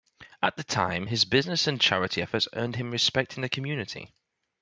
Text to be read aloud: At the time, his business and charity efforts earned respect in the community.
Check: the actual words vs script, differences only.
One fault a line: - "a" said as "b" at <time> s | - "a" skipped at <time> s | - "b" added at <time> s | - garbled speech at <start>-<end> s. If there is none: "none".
- "him" added at 2.8 s